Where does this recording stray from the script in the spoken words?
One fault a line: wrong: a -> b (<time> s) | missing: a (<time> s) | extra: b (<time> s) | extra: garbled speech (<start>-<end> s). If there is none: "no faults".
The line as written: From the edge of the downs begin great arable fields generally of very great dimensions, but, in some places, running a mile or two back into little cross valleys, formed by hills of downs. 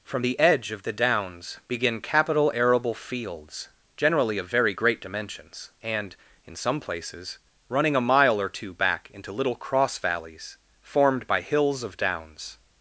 wrong: great -> capital (2.0 s)
wrong: but -> and (5.8 s)